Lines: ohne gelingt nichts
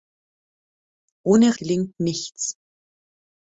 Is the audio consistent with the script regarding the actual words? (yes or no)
yes